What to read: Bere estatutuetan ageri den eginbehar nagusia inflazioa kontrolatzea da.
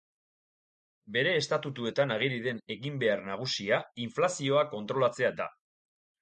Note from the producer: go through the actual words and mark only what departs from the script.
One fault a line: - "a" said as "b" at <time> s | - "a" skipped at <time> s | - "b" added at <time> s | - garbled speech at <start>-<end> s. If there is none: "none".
none